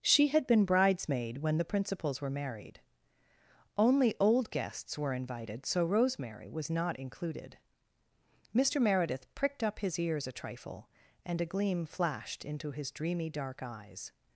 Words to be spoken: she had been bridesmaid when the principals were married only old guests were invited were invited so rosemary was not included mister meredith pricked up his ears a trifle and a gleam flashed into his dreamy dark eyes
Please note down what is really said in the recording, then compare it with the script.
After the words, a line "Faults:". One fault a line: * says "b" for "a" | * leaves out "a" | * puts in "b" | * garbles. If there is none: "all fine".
she had been bridesmaid when the principals were married only old guests were invited so rosemary was not included mister meredith pricked up his ears a trifle and a gleam flashed into his dreamy dark eyes
Faults:
* leaves out "were invited"